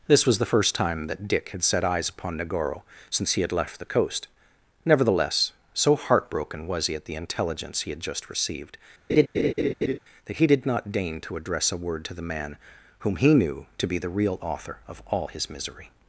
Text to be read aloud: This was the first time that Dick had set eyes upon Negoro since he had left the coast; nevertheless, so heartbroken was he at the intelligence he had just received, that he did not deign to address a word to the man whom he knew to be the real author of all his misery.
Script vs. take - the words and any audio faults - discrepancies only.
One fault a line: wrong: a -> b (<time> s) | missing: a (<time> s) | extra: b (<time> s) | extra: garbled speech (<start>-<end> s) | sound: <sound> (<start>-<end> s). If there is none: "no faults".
sound: laugh (9.1-10.0 s)